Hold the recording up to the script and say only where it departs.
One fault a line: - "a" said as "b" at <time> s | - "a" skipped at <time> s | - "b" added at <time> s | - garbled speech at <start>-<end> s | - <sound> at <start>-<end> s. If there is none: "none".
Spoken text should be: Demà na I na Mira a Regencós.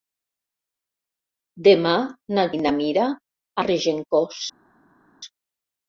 none